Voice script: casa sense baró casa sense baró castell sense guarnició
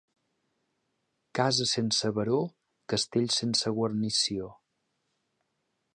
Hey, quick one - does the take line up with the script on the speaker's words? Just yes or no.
no